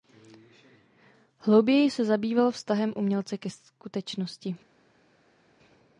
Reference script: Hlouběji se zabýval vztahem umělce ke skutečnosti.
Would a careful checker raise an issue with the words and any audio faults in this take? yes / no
no